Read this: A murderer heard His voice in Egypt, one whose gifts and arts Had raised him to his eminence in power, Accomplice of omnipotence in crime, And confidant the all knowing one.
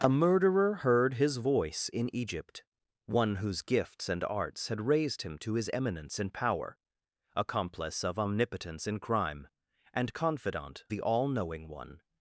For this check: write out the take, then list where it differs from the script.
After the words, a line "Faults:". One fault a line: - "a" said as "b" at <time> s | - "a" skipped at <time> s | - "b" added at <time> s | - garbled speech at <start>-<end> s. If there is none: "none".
A murderer heard His voice in Egypt, one whose gifts and arts Had raised him to his eminence in power, Accomplice of omnipotence in crime, And confidant the all knowing one.
Faults:
none